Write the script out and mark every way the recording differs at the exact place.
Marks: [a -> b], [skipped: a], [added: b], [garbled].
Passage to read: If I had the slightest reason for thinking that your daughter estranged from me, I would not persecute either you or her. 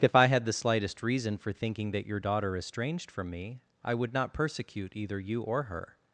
If I had the slightest reason for thinking that your daughter estranged from me, I would not persecute either you or her.